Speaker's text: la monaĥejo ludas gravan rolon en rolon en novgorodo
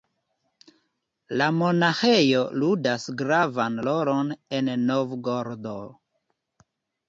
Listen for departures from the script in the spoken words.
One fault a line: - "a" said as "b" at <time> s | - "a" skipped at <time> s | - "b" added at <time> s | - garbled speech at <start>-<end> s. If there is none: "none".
- "rolon en" skipped at 4.7 s